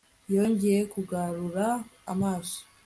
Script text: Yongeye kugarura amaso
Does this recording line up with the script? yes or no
yes